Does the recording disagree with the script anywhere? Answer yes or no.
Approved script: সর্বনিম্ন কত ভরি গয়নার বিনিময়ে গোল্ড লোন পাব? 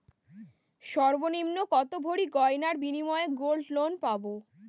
no